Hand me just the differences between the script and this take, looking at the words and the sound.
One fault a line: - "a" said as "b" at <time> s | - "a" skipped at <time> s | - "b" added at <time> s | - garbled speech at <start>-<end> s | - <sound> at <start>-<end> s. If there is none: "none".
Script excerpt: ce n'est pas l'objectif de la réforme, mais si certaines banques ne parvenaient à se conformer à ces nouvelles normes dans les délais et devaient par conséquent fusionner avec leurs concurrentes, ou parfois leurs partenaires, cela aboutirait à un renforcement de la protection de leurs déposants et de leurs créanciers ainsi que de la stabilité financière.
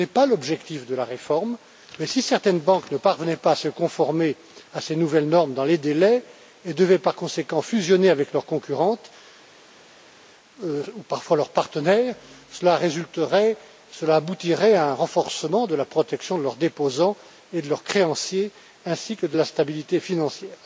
- "pas" added at 3.4 s